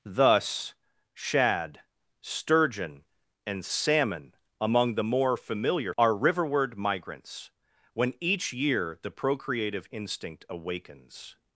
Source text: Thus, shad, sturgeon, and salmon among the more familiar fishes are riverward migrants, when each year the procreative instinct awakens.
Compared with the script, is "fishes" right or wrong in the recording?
wrong